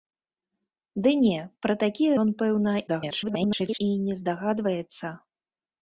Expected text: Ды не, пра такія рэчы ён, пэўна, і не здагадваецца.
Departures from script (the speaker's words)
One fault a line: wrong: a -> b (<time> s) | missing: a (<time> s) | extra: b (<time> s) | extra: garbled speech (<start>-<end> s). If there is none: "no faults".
missing: рэчы (2.1 s)
extra: garbled speech (2.9-3.8 s)